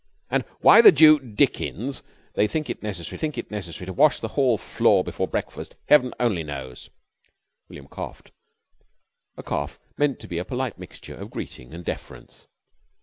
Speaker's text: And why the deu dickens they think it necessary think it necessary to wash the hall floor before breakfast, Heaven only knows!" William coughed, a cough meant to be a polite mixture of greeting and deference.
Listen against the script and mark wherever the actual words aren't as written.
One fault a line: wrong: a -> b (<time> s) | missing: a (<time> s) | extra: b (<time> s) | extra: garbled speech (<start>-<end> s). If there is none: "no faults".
no faults